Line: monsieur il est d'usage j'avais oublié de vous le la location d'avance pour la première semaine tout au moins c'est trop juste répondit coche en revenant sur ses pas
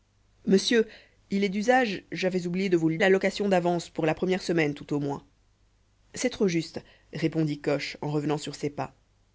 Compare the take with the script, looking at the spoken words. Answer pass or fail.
pass